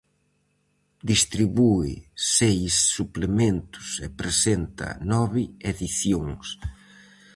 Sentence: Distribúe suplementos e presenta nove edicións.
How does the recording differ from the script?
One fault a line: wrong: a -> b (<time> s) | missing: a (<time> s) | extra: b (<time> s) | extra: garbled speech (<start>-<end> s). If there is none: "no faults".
extra: seis (2.4 s)